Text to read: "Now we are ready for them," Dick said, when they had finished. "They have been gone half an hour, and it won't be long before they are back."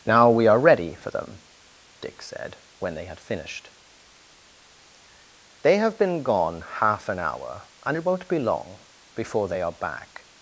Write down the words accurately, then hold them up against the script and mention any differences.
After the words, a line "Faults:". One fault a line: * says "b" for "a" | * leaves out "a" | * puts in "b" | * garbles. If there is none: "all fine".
"Now we are ready for them," Dick said, when they had finished. "They have been gone half an hour, and it won't be long before they are back."
Faults:
all fine